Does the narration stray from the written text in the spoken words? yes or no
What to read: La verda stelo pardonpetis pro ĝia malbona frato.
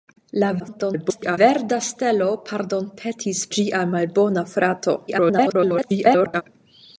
yes